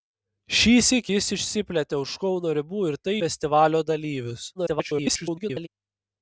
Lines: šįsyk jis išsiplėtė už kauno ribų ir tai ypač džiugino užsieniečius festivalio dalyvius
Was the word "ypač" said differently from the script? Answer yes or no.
yes